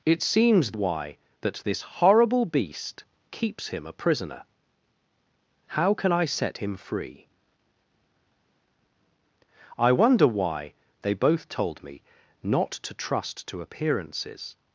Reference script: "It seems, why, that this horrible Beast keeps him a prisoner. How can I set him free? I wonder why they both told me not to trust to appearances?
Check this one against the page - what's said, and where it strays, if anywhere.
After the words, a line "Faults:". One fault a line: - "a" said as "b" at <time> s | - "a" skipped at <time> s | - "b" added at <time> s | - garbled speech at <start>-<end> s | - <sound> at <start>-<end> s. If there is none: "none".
"It seems, why, that this horrible Beast keeps him a prisoner. How can I set him free? I wonder why they both told me not to trust to appearances?
Faults:
none